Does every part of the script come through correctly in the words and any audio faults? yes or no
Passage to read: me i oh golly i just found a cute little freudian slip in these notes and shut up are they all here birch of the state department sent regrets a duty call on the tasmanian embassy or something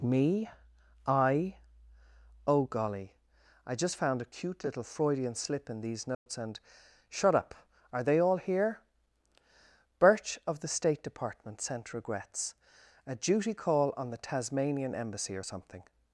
no